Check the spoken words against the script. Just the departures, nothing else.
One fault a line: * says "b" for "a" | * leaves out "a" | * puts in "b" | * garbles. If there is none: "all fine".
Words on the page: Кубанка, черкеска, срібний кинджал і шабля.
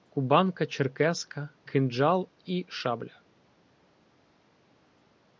* leaves out "срібний"